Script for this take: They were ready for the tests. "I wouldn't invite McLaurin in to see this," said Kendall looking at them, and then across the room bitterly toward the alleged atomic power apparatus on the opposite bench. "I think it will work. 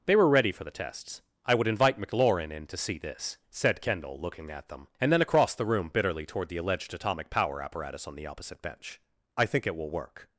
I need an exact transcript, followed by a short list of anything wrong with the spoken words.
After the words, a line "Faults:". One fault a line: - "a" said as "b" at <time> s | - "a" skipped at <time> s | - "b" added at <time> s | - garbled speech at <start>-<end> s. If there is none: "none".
They were ready for the tests. "I would invite McLaurin in to see this," said Kendall looking at them, and then across the room bitterly toward the alleged atomic power apparatus on the opposite bench. "I think it will work.
Faults:
- "wouldn't" said as "would" at 1.5 s